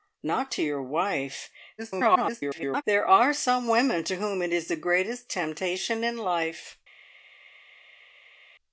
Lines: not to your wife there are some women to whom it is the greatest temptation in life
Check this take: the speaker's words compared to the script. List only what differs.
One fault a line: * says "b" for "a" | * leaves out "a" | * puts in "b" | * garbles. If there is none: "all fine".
* garbles